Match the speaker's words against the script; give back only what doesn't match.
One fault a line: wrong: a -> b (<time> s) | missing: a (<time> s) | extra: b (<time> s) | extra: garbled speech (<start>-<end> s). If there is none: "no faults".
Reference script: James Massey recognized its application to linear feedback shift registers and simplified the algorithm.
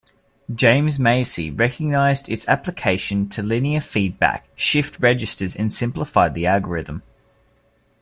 no faults